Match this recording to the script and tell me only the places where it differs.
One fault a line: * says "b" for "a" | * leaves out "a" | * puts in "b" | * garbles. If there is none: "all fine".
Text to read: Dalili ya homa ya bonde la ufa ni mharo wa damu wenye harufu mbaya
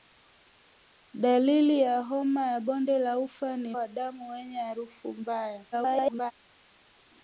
* leaves out "mharo"
* garbles